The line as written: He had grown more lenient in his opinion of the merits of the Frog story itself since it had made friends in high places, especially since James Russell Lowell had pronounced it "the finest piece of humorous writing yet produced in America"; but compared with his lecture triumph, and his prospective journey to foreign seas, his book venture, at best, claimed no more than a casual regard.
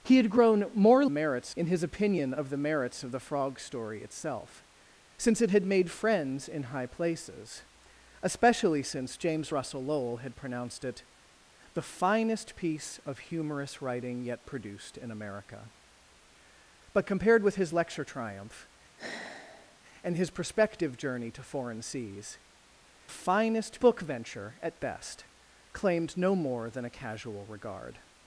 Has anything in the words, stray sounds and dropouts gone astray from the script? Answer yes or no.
yes